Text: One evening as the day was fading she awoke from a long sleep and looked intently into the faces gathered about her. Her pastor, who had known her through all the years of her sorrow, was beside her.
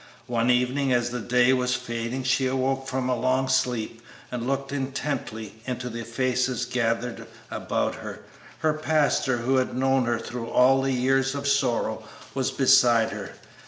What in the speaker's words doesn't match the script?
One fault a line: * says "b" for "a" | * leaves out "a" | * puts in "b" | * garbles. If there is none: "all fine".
* leaves out "her"